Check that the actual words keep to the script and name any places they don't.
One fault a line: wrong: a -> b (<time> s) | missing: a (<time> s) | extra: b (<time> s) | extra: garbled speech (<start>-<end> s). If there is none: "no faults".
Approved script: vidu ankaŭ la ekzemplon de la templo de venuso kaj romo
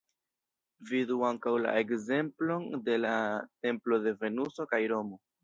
no faults